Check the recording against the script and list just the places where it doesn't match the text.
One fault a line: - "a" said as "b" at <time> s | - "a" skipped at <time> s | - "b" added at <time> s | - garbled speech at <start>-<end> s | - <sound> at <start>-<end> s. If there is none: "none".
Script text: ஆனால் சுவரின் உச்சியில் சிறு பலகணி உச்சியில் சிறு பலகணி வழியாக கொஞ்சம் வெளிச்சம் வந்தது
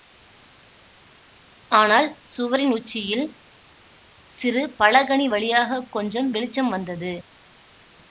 - "உச்சியில் சிறு பலகணி" skipped at 5.3 s